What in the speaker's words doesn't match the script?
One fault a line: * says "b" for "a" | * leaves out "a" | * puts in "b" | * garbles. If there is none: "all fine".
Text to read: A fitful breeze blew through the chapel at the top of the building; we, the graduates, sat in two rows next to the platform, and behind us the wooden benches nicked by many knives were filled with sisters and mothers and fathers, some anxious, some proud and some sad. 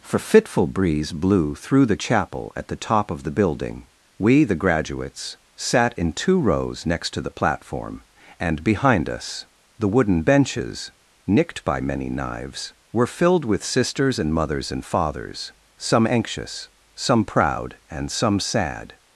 * says "For" for "A"